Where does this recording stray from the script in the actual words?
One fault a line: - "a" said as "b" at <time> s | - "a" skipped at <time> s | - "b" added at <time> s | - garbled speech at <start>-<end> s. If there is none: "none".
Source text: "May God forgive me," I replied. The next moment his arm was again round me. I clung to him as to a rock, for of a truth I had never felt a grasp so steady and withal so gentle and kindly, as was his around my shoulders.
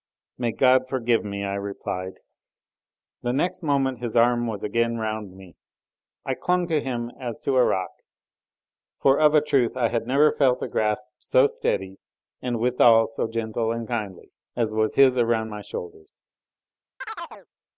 none